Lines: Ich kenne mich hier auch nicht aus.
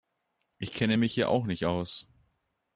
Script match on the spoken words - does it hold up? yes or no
yes